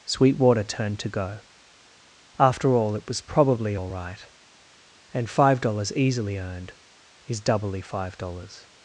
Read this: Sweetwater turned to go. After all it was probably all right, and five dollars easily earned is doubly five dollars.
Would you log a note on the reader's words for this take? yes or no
no